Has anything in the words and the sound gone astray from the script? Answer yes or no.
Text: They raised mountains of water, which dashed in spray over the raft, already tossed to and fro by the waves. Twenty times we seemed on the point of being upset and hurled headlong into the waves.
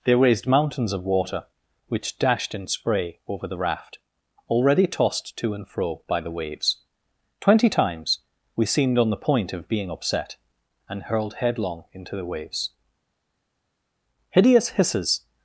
yes